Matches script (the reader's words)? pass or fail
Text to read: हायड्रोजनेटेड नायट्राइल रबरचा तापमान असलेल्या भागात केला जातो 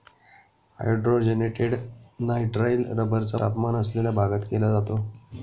pass